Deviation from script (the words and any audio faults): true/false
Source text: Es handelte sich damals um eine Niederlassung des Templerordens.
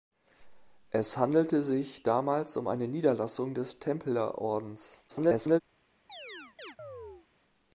true